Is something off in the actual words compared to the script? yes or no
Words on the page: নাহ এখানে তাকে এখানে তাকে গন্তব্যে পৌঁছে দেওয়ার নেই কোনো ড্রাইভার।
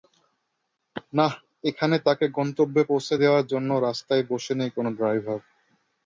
yes